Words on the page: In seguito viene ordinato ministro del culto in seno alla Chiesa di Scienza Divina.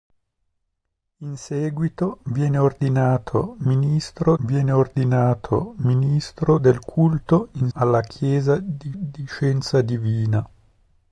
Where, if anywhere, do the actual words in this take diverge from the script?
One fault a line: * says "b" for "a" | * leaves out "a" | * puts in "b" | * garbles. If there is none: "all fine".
* puts in "viene ordinato ministro"
* leaves out "seno"
* puts in "di"